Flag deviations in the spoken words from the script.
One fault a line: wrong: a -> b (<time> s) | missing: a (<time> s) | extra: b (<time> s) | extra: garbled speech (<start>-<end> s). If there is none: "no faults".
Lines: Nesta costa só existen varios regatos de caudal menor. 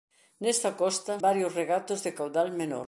missing: só existen (1.1 s)